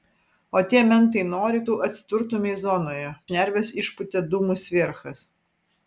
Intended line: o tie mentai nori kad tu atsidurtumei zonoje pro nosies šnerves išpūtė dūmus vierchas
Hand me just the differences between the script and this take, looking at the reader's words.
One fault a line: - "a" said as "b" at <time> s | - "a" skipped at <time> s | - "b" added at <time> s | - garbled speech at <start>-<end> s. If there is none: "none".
- "kad" skipped at 1.6 s
- "pro nosies" skipped at 3.1 s